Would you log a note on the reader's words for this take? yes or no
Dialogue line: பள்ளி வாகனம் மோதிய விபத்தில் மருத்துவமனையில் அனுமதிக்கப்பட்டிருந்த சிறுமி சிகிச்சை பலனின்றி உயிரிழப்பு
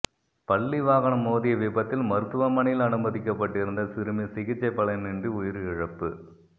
no